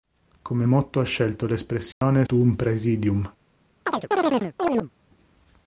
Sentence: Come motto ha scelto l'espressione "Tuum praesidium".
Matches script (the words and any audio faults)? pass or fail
fail